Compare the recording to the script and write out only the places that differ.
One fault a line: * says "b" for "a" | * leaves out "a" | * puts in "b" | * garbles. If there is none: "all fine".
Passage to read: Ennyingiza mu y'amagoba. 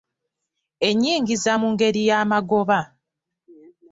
* puts in "ngeri"